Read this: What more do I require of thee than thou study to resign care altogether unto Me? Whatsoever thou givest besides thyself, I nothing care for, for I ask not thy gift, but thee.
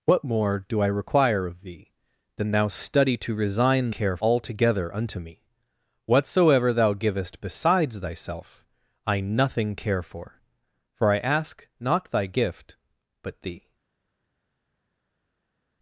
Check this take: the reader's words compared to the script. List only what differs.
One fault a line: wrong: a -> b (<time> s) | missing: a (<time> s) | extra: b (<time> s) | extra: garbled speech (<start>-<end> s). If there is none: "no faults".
no faults